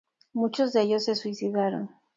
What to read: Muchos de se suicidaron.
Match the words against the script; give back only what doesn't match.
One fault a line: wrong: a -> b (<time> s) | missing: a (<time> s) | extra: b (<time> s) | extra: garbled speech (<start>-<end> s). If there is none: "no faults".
extra: ellos (0.8 s)